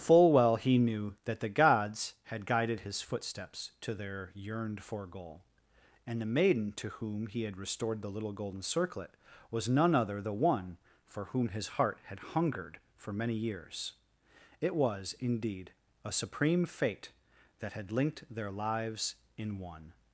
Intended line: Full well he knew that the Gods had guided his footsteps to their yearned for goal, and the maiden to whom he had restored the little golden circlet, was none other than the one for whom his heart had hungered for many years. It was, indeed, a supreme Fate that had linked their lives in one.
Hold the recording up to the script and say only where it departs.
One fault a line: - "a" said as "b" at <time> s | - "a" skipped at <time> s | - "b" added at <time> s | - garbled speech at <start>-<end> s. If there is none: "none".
- "than" skipped at 10.2 s